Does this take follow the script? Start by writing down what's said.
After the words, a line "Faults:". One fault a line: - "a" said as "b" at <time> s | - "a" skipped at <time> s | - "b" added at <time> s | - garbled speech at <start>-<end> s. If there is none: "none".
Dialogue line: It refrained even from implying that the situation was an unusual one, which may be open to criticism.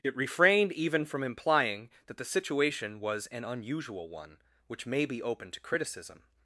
It refrained even from implying that the situation was an unusual one, which may be open to criticism.
Faults:
none